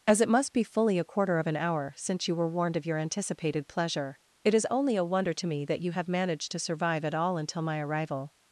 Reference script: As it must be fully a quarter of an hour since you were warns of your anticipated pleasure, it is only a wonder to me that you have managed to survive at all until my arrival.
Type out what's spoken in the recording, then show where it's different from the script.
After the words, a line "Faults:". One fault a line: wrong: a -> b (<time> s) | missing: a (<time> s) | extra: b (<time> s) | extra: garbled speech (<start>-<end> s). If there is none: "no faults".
As it must be fully a quarter of an hour since you were warned of your anticipated pleasure, it is only a wonder to me that you have managed to survive at all until my arrival.
Faults:
wrong: warns -> warned (2.5 s)